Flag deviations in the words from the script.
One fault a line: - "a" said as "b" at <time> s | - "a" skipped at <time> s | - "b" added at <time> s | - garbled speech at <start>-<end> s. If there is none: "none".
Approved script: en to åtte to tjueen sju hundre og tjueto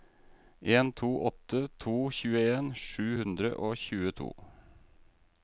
none